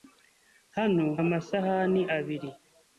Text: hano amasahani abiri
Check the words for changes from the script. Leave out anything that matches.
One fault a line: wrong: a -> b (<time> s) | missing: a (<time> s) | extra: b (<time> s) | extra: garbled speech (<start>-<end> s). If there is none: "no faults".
no faults